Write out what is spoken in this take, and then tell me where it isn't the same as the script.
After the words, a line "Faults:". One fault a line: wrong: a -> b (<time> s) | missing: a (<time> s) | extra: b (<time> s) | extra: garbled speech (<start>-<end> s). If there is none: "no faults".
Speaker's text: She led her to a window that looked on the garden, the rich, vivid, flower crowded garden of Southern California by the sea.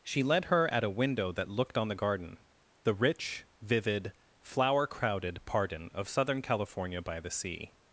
She led her at a window that looked on the garden, the rich, vivid, flower crowded pardon of Southern California by the sea.
Faults:
wrong: to -> at (0.7 s)
wrong: garden -> pardon (5.4 s)